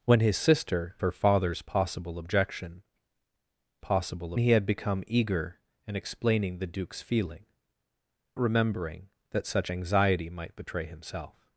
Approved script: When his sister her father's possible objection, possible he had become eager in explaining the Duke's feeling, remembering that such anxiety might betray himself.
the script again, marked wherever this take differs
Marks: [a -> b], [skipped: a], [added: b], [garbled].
When his sister her father's possible objection, possible he had become eager in explaining the Duke's feeling, remembering that such anxiety might betray himself.